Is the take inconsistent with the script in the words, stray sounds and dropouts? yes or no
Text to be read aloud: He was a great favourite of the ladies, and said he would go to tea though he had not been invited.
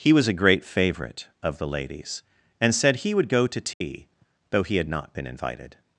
yes